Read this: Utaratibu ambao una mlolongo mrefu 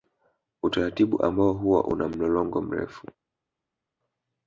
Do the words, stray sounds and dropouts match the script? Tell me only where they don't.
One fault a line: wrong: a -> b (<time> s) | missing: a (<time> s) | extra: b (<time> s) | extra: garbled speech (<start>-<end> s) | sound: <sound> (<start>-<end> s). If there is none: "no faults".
extra: huwa (1.5 s)